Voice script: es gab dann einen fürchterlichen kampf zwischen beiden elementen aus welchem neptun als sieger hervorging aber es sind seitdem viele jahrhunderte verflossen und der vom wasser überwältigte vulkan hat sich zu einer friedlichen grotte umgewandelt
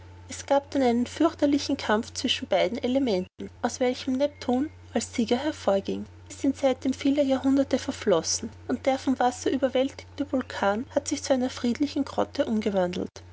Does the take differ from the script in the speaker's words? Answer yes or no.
yes